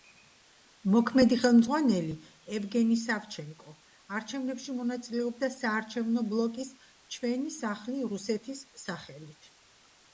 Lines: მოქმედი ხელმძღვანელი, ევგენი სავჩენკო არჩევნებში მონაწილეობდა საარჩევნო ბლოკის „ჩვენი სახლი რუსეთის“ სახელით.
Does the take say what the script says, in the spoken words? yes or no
yes